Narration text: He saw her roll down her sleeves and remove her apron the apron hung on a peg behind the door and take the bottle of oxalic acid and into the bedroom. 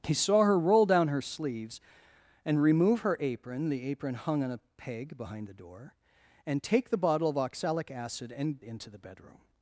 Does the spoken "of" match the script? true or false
true